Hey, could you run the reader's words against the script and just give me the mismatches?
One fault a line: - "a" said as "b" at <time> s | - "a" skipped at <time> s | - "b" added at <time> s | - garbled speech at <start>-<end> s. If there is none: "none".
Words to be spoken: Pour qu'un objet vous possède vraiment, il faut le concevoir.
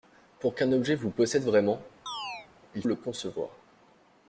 - "faut" skipped at 2.8 s